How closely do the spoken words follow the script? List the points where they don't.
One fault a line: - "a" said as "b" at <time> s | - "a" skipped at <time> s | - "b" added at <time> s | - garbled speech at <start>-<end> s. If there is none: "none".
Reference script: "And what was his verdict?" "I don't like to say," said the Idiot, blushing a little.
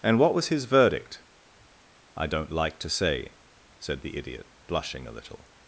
none